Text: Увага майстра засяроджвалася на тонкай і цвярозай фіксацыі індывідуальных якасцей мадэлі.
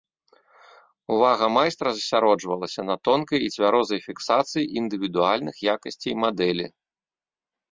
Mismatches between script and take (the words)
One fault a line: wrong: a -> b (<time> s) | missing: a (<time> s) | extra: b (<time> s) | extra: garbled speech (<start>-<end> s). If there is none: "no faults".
no faults